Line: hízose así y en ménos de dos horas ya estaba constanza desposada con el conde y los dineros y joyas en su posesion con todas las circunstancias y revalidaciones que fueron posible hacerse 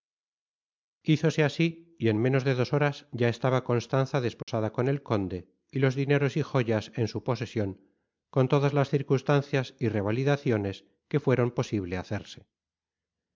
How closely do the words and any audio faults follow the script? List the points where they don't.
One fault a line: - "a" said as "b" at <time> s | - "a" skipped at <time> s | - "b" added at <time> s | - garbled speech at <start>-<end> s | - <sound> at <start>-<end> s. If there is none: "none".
- dropout at 4.4-4.5 s